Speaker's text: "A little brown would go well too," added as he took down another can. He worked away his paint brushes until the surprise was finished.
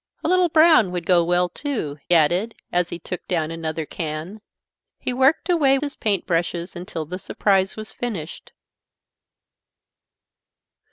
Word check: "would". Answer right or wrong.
right